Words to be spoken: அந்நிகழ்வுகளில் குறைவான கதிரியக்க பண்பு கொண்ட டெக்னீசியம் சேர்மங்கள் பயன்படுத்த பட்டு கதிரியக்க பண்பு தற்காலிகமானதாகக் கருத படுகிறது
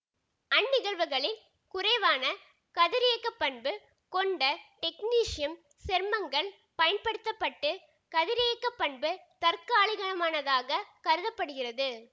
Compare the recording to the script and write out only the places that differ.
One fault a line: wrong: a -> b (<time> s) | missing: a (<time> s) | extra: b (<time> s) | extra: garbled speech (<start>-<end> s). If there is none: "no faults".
no faults